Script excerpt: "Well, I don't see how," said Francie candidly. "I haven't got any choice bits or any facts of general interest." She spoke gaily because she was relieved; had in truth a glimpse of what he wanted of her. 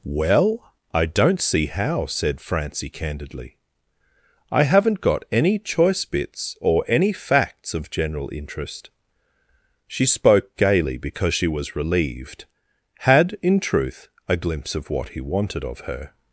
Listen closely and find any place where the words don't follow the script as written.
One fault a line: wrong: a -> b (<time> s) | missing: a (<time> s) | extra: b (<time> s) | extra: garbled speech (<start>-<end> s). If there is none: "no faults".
no faults